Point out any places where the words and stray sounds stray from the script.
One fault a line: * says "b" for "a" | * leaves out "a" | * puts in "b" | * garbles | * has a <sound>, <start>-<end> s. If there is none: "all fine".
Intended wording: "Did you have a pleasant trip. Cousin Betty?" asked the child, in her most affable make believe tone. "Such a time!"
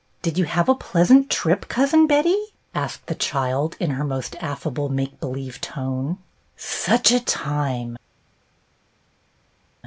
all fine